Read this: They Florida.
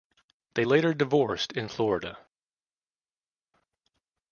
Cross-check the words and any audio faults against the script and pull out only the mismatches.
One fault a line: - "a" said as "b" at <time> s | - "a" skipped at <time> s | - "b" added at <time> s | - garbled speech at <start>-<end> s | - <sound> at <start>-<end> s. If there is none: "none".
- "later divorced in" added at 0.6 s